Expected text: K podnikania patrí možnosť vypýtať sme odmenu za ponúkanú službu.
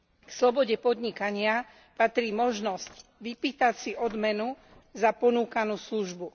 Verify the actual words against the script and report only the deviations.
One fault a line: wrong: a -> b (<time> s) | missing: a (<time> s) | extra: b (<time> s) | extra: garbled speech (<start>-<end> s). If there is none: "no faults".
extra: slobode (0.3 s)
wrong: sme -> si (3.7 s)